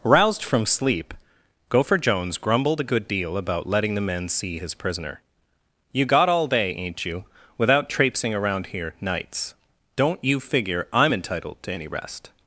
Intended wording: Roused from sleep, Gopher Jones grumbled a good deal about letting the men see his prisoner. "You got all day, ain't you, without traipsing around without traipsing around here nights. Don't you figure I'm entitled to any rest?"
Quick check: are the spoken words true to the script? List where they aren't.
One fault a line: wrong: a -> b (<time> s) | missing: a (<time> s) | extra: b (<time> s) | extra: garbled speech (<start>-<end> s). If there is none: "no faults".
missing: without traipsing around (8.7 s)